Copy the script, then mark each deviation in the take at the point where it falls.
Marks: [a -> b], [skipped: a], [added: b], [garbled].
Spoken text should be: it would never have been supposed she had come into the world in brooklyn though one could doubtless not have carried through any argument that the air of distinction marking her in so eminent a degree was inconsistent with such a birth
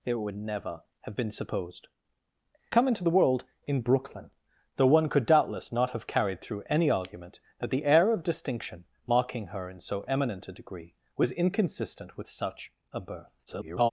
it would never have been supposed [skipped: she had] come into the world in brooklyn though one could doubtless not have carried through any argument that the air of distinction marking her in so eminent a degree was inconsistent with such a birth [garbled]